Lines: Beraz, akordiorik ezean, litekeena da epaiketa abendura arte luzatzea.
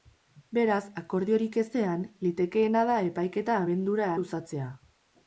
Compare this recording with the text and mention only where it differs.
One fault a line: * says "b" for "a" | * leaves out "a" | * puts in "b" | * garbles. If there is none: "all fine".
* leaves out "arte"